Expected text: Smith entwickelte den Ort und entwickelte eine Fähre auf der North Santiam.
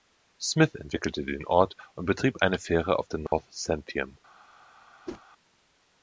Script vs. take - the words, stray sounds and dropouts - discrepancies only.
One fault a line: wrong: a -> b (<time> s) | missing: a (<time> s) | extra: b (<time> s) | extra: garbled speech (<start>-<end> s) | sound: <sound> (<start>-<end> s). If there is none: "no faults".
wrong: entwickelte -> betrieb (2.1 s)
sound: dropout (3.3-3.3 s)
sound: whoosh (5.1-5.2 s)